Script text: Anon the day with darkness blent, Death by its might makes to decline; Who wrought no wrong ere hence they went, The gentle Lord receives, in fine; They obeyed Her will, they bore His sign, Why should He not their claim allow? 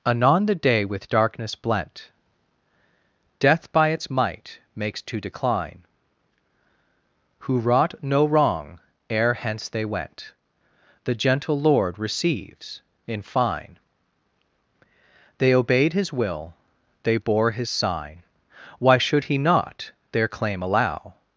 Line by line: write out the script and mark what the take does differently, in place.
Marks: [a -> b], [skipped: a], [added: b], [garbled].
Anon the day with darkness blent, Death by its might makes to decline; Who wrought no wrong ere hence they went, The gentle Lord receives, in fine; They obeyed [Her -> His] will, they bore His sign, Why should He not their claim allow?